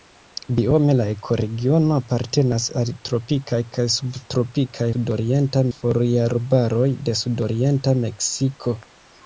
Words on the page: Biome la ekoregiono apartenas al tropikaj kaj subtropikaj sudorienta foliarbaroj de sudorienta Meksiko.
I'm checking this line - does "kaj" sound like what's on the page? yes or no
yes